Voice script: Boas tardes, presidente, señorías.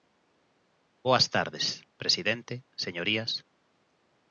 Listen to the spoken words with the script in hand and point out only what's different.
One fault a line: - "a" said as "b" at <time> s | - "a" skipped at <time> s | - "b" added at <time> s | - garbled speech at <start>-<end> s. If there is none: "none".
none